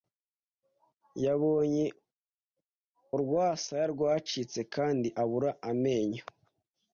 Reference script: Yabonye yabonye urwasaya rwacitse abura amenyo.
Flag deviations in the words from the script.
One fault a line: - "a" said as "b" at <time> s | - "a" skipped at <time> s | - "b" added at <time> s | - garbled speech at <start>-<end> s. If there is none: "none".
- "yabonye" skipped at 1.9 s
- "kandi" added at 4.7 s